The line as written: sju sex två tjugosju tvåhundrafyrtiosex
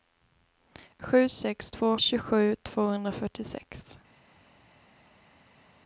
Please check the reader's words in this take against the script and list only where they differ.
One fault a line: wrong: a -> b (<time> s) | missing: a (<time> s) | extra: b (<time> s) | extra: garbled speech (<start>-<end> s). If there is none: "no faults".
no faults